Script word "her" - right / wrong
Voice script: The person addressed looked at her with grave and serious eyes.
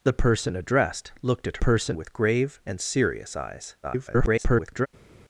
wrong